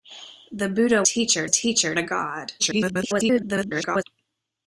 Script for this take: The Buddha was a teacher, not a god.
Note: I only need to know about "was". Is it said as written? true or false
false